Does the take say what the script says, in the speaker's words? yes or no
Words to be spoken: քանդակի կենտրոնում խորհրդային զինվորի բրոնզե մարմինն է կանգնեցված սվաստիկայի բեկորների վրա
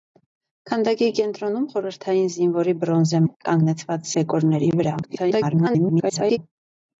no